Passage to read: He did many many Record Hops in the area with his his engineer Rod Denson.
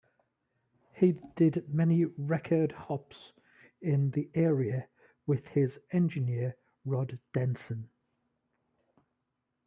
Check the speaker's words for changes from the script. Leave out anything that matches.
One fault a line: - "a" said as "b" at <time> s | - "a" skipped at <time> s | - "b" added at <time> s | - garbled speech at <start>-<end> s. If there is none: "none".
- "many" skipped at 2.0 s
- "his" skipped at 5.8 s